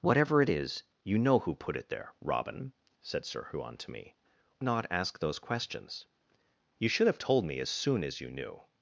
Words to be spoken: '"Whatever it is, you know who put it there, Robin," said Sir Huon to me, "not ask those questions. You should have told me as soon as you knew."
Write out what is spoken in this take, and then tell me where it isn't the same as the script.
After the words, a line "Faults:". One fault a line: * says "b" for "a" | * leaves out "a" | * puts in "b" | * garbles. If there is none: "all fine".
'"Whatever it is, you know who put it there, Robin," said Sir Huon to me, "not ask those questions. You should have told me as soon as you knew."
Faults:
all fine